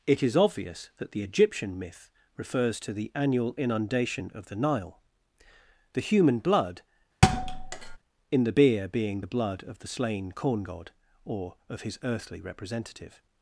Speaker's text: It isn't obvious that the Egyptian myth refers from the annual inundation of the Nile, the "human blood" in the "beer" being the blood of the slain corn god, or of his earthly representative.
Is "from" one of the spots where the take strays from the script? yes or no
yes